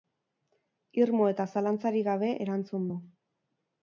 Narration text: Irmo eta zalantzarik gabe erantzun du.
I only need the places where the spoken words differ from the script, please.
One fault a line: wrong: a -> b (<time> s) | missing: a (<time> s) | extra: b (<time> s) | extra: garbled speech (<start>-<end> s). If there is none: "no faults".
no faults